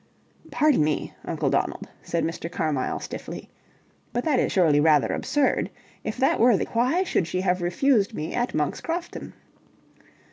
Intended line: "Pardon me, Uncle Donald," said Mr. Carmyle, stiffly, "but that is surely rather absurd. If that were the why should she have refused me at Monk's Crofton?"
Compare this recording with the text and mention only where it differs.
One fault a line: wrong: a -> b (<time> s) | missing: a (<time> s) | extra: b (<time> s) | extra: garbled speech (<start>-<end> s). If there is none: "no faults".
no faults